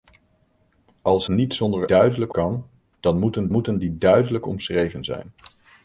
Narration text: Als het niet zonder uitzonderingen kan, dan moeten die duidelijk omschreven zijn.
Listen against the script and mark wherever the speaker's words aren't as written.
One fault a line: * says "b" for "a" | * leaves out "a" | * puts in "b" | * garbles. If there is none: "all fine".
* leaves out "het"
* says "duidelijk" for "uitzonderingen"
* puts in "moeten"